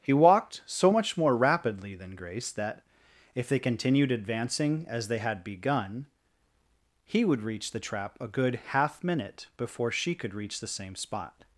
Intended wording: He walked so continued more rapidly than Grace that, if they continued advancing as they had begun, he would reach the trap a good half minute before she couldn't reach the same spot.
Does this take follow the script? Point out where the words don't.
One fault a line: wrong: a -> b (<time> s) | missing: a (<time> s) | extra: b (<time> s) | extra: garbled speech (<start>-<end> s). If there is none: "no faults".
wrong: continued -> much (0.9 s)
wrong: couldn't -> could (10.1 s)